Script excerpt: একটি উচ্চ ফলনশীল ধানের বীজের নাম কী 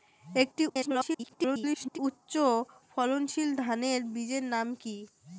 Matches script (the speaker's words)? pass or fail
fail